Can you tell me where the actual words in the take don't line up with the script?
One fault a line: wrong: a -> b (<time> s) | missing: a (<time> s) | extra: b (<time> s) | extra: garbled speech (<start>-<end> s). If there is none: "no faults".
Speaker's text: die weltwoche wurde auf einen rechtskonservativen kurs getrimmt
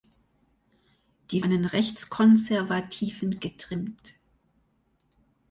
missing: weltwoche wurde auf (1.4 s)
missing: kurs (3.4 s)